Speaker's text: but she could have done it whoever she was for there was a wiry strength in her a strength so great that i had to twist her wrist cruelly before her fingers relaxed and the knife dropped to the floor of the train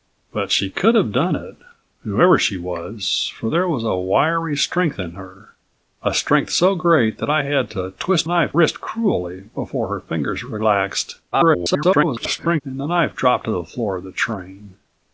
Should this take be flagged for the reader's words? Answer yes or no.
yes